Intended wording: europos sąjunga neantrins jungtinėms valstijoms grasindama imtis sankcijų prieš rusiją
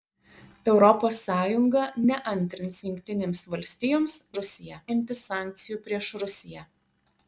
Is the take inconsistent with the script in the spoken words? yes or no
yes